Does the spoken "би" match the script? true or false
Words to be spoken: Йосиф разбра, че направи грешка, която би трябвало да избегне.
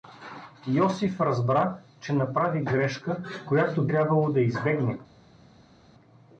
false